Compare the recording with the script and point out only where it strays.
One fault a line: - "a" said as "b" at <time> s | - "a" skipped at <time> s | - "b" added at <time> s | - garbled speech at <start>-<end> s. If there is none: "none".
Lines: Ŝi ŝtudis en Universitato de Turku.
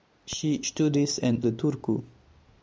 - "Universitato" skipped at 1.4 s